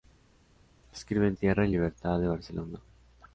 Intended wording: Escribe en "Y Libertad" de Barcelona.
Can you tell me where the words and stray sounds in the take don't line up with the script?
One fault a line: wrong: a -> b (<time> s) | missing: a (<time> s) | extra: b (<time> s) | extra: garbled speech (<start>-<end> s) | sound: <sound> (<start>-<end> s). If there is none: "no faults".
extra: Tierra (1.3 s)